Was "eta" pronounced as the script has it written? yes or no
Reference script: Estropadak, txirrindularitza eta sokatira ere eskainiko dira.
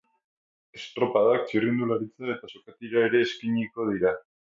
yes